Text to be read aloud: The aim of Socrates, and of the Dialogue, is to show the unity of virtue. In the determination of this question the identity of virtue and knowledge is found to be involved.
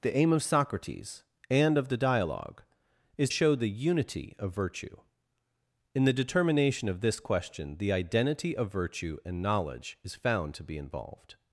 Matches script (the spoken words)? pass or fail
fail